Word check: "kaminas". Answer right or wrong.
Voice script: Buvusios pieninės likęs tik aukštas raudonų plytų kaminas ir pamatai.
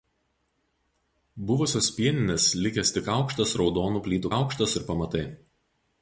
wrong